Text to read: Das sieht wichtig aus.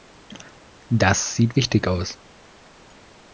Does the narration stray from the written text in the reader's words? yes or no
no